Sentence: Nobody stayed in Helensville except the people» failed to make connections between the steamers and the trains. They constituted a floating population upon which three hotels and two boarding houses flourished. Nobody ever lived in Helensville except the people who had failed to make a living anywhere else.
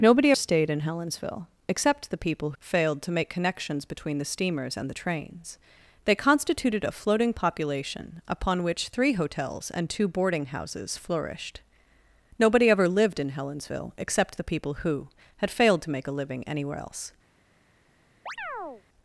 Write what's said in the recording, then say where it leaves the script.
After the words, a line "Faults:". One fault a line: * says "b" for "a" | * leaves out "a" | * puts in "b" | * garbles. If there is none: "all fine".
Nobody stayed in Helensville except the people» failed to make connections between the steamers and the trains. They constituted a floating population upon which three hotels and two boarding houses flourished. Nobody ever lived in Helensville except the people who had failed to make a living anywhere else.
Faults:
all fine